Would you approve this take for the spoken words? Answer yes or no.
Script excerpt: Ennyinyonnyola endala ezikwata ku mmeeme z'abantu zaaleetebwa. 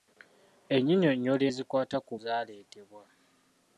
no